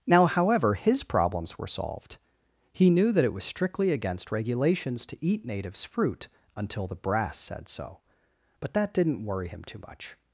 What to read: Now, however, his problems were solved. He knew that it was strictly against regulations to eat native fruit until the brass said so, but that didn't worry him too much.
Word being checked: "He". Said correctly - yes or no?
yes